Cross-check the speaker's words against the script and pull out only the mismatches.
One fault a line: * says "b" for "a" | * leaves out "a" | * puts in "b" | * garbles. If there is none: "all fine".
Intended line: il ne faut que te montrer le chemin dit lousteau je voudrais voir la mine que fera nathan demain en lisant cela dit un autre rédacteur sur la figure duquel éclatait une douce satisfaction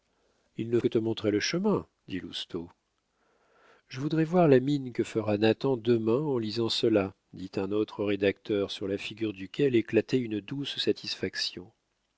* leaves out "faut"